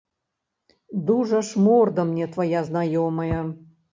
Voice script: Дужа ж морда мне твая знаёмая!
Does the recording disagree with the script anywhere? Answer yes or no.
no